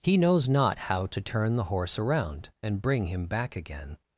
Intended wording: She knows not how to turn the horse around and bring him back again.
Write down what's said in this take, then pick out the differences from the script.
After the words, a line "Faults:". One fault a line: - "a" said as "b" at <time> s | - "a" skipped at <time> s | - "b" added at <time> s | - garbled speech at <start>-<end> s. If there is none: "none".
He knows not how to turn the horse around and bring him back again.
Faults:
- "She" said as "He" at 0.0 s